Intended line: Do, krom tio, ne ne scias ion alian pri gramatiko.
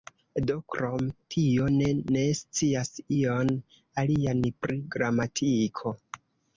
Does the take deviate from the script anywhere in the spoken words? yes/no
no